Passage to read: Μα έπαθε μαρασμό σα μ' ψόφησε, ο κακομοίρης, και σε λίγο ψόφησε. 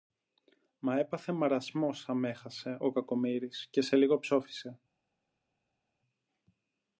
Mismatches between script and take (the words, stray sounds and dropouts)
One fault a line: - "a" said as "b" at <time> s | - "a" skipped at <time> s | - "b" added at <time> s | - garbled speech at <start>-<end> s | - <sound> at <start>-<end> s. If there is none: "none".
- "ψόφησε" said as "έχασε" at 2.2 s